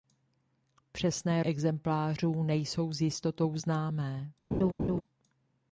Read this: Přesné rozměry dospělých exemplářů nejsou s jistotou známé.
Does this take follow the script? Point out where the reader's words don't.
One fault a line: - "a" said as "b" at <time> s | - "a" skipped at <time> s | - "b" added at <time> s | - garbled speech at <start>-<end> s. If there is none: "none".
- "rozměry dospělých" skipped at 1.4 s